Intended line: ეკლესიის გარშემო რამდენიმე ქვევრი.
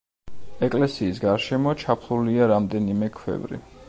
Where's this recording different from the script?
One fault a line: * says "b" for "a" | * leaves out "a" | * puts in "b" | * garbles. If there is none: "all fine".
* puts in "ჩაფლულია"